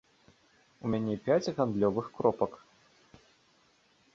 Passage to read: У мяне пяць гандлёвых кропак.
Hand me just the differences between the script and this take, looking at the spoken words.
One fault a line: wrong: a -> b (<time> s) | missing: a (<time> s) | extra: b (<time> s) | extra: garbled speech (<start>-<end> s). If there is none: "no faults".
no faults